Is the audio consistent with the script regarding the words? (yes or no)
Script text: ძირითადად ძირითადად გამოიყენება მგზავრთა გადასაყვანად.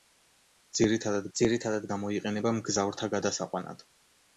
yes